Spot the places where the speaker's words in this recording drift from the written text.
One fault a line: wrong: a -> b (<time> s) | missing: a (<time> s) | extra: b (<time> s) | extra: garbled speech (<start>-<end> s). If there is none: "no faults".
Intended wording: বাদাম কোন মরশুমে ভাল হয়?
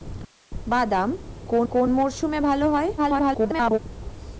extra: কোন (1.7 s)
extra: garbled speech (3.0-3.8 s)